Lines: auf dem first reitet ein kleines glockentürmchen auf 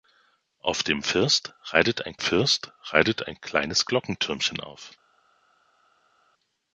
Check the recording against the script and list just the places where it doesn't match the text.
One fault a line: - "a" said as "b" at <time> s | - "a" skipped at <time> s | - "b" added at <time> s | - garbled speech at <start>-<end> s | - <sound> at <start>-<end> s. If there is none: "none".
- "first reitet ein" added at 2.2 s